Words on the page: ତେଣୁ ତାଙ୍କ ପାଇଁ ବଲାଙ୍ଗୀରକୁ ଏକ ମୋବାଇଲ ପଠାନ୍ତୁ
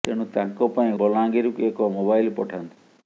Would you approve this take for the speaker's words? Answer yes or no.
yes